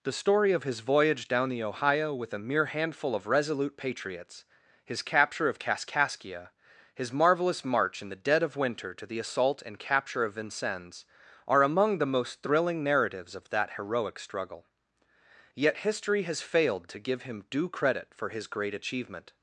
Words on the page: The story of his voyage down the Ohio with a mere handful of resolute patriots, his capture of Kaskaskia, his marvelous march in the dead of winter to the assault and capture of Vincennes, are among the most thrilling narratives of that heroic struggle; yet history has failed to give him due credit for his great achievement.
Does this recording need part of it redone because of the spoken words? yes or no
no